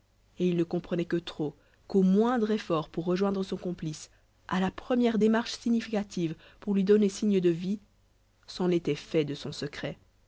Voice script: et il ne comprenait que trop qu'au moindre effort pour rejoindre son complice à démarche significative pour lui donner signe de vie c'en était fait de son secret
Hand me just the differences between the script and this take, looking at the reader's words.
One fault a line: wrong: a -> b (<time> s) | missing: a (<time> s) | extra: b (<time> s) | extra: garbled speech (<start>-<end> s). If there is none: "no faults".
extra: la première (4.6 s)